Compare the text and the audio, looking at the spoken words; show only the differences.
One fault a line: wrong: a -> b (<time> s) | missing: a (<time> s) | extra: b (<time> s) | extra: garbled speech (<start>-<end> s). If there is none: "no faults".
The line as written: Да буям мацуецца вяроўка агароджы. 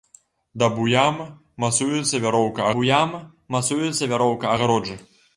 extra: буям мацуецца вяроўка (2.7 s)